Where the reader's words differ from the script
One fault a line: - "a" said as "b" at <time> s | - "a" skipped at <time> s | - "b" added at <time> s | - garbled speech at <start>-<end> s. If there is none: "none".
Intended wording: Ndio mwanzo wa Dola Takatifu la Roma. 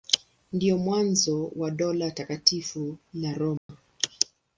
none